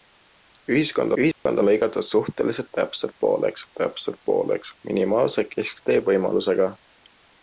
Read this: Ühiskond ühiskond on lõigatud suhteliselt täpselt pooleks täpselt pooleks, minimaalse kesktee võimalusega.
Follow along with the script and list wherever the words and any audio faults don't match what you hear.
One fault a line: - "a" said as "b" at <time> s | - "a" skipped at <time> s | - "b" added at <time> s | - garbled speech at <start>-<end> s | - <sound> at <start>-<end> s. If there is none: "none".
- dropout at 1.3-1.5 s